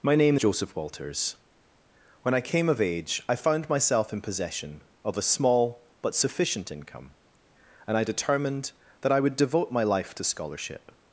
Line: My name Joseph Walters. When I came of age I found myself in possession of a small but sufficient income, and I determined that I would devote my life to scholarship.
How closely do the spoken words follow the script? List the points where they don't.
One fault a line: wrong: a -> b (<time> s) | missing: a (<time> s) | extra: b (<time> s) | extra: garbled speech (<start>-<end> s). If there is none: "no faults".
no faults